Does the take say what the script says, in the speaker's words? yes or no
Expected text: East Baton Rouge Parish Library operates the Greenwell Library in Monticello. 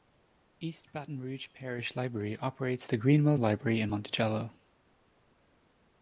yes